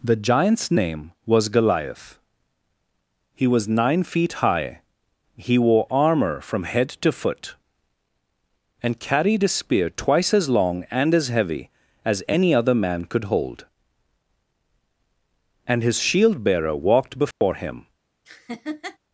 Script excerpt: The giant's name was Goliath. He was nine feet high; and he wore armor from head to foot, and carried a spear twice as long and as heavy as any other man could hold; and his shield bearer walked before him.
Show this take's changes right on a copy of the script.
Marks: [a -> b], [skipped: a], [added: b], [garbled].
The giant's name was Goliath. He was nine feet high; [skipped: and] he wore armor from head to foot, and carried a spear twice as long and as heavy as any other man could hold; and his shield bearer walked before him.